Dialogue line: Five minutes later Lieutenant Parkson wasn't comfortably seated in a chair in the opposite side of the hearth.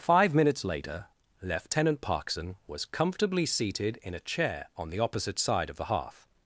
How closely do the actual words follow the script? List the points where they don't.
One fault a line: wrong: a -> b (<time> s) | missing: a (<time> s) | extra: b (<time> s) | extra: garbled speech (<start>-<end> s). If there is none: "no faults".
wrong: wasn't -> was (2.6 s)
wrong: in -> on (4.8 s)